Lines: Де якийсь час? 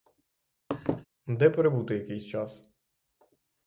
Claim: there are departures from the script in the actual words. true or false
true